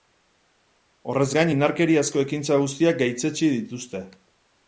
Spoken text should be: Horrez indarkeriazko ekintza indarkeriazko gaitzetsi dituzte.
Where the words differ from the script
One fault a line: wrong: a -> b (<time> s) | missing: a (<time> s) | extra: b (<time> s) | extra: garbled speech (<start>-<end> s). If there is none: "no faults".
extra: gain (1.4 s)
wrong: indarkeriazko -> guztiak (2.6 s)